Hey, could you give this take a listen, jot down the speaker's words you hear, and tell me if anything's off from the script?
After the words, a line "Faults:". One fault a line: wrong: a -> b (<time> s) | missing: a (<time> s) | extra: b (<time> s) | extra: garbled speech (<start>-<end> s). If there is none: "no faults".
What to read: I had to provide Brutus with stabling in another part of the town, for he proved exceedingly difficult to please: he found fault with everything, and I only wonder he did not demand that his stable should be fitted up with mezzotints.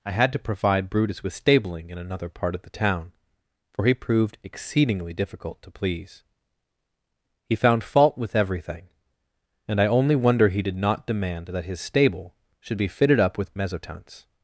I had to provide Brutus with stabling in another part of the town, for he proved exceedingly difficult to please: he found fault with everything, and I only wonder he did not demand that his stable should be fitted up with mezzotints.
Faults:
no faults